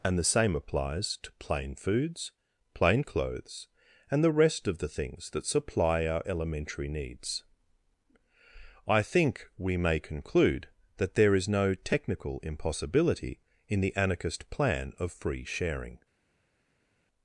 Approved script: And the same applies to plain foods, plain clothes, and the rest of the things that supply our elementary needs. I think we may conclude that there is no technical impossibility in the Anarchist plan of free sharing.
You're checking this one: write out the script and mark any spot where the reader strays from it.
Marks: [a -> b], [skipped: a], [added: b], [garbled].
And the same applies to plain foods, plain clothes, and the rest of the things that supply our elementary needs. I think we may conclude that there is no technical impossibility in the Anarchist plan of free sharing.